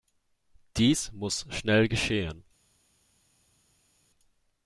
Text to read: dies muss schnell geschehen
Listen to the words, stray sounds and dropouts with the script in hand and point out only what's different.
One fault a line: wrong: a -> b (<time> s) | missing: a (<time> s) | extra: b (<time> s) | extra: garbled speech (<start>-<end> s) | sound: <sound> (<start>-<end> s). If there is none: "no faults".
no faults